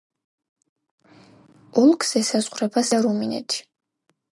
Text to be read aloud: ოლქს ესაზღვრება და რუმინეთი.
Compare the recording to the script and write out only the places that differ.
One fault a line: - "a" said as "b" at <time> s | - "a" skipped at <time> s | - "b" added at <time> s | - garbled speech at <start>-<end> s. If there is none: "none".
none